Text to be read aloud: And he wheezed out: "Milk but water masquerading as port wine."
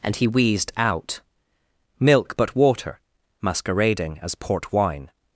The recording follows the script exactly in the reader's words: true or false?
true